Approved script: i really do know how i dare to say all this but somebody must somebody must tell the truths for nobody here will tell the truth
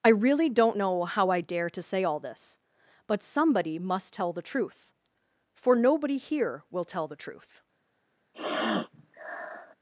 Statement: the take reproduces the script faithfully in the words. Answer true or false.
false